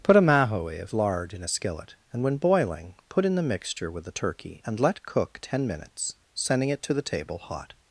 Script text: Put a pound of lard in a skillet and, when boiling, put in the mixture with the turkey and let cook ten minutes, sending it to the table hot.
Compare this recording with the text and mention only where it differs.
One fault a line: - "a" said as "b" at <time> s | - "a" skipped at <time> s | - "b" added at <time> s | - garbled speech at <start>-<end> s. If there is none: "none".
- "pound" said as "mahoe" at 0.2 s